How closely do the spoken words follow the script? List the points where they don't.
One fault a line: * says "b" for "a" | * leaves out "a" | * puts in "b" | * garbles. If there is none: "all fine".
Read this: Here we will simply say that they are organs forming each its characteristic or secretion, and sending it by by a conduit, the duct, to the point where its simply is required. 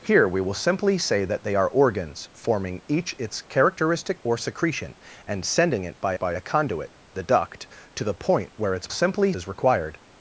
all fine